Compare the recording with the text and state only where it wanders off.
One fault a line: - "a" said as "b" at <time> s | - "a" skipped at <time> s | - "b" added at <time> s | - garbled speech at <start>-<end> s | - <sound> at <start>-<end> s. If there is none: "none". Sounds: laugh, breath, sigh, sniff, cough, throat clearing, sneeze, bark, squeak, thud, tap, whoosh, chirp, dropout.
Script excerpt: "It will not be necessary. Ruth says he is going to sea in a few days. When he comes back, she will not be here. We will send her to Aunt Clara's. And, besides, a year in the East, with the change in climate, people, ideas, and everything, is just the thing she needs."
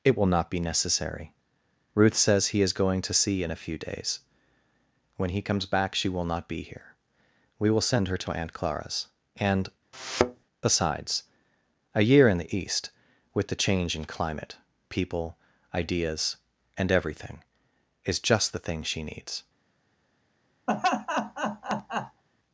- thud at 9.9-10.5 s
- laugh at 20.7-22.2 s